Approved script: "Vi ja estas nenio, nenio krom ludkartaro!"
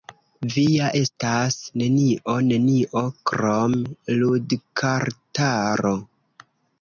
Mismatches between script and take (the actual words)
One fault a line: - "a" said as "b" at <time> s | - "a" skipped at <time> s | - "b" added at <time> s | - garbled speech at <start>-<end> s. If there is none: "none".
none